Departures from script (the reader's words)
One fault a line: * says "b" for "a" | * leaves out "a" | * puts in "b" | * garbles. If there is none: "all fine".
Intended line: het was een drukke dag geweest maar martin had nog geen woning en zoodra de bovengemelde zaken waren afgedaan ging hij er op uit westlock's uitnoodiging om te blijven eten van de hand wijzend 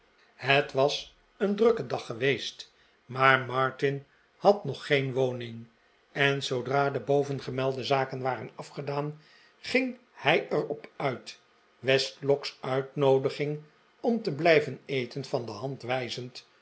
all fine